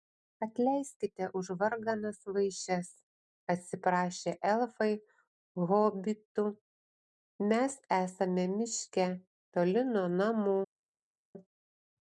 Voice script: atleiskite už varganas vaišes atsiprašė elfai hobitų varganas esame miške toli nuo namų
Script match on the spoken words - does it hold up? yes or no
no